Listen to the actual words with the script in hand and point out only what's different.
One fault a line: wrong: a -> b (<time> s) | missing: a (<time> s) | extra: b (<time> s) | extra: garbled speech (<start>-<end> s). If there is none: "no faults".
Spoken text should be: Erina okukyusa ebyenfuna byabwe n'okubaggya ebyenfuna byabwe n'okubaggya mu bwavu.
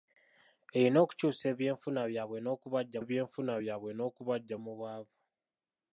no faults